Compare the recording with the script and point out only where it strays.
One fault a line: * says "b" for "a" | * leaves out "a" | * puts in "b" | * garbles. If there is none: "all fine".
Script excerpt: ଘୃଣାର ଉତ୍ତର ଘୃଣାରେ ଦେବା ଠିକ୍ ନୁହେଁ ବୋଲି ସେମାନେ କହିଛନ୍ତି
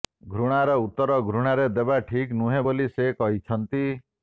* says "ସେ" for "ସେମାନେ"